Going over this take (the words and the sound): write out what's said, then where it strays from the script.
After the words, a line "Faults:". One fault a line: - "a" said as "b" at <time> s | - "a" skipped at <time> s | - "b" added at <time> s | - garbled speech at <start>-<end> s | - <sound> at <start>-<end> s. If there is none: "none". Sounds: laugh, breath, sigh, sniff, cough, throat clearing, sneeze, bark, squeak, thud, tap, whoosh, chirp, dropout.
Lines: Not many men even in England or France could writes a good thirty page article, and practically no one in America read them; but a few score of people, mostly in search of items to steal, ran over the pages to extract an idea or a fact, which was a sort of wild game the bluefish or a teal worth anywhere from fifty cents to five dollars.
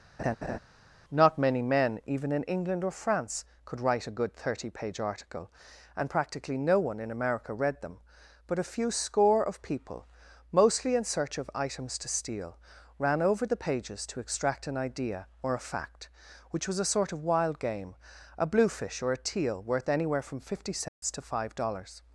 Not many men even in England or France could write a good thirty page article, and practically no one in America read them; but a few score of people, mostly in search of items to steal, ran over the pages to extract an idea or a fact, which was a sort of wild game a bluefish or a teal worth anywhere from fifty cents to five dollars.
Faults:
- laugh at 0.2-0.6 s
- "writes" said as "write" at 3.8 s
- "the" said as "a" at 18.4 s
- dropout at 20.9-21.0 s